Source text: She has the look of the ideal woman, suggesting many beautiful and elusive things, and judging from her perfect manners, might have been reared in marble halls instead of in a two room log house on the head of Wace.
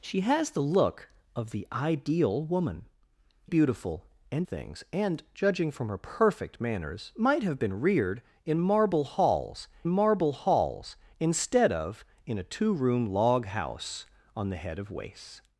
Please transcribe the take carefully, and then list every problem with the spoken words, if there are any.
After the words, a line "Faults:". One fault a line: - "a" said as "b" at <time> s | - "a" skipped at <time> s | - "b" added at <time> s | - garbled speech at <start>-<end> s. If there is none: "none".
She has the look of the ideal woman, beautiful and things, and judging from her perfect manners, might have been reared in marble halls marble halls instead of in a two room log house on the head of Wace.
Faults:
- "suggesting many" skipped at 2.9 s
- "elusive" skipped at 4.5 s
- "marble halls" added at 9.9 s